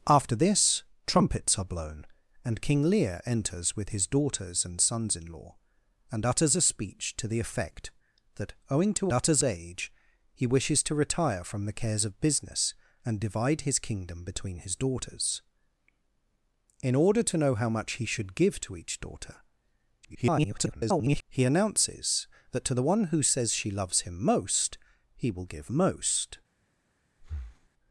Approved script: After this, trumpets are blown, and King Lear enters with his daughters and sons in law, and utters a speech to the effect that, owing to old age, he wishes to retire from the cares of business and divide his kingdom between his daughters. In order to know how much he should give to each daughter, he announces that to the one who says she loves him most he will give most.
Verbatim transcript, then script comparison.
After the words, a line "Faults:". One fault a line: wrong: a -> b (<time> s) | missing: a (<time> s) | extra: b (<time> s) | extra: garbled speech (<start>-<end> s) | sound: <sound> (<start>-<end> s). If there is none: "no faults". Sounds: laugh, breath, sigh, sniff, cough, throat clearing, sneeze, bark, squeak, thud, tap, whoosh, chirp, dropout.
After this, trumpets are blown, and King Lear enters with his daughters and sons in law, and utters a speech to the effect that, owing to utters age, he wishes to retire from the cares of business and divide his kingdom between his daughters. In order to know how much he should give to each daughter, [garbled] he announces that to the one who says she loves him most he will give most.
Faults:
wrong: old -> utters (9.1 s)
extra: garbled speech (20.0-21.2 s)
sound: breath (27.2-27.7 s)